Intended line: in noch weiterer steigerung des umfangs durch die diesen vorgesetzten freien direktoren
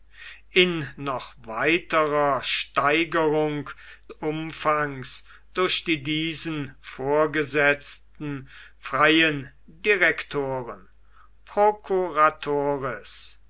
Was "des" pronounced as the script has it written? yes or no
no